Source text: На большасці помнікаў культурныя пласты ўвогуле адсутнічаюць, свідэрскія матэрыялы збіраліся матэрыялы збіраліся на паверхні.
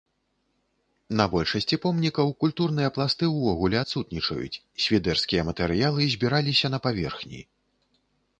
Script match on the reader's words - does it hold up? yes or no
no